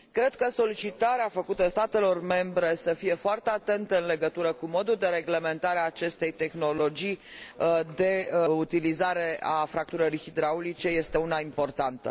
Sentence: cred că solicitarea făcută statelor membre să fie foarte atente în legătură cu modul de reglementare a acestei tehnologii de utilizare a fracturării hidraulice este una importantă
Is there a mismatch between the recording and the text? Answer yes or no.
no